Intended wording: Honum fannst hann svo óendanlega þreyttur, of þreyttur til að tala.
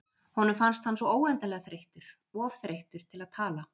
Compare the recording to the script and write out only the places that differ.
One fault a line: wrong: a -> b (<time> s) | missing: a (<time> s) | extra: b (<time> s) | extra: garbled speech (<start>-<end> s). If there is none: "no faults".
no faults